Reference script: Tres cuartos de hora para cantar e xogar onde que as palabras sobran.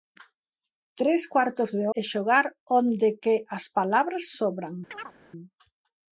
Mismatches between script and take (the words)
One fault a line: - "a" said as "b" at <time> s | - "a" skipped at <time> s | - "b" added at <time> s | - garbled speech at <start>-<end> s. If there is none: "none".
- "hora para cantar" skipped at 1.9 s